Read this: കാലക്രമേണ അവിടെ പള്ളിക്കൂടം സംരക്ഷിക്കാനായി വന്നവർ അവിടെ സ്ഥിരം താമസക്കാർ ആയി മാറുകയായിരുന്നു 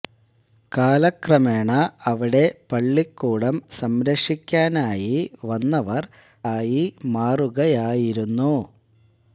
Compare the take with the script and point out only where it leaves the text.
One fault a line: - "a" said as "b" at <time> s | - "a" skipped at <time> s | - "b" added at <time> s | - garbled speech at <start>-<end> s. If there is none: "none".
- "അവിടെ സ്ഥിരം താമസക്കാർ" skipped at 6.1 s